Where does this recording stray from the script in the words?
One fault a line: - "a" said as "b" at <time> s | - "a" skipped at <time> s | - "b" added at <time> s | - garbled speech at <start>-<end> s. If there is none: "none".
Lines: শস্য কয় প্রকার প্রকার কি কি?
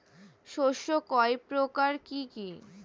- "প্রকার" skipped at 1.9 s